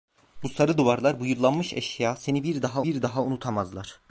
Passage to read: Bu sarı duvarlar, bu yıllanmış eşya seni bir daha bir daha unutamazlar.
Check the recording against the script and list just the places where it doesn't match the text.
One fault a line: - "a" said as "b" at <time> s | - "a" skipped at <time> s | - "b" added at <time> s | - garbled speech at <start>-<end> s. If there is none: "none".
none